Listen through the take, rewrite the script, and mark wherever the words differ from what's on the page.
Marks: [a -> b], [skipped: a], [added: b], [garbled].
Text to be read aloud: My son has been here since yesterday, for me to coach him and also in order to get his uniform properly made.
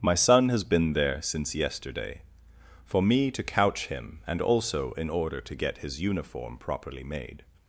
My son has been [here -> there] since yesterday, for me to [coach -> couch] him and also in order to get his uniform properly made.